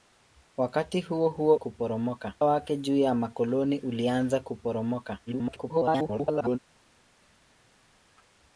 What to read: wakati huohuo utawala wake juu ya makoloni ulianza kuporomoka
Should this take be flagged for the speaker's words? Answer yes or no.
yes